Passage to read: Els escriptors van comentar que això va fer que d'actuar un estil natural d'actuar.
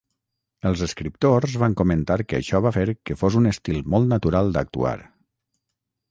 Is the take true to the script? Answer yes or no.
no